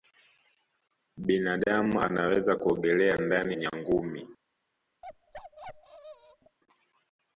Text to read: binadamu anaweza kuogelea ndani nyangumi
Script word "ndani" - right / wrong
right